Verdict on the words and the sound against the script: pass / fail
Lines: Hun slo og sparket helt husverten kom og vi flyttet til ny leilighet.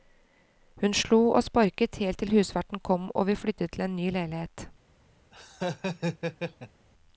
fail